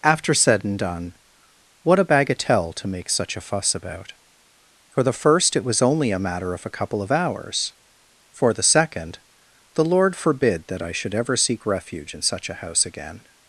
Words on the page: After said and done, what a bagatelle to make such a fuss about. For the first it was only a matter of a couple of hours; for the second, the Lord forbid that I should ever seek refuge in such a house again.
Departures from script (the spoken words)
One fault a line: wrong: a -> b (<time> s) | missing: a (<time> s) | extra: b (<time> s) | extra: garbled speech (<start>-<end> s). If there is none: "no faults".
no faults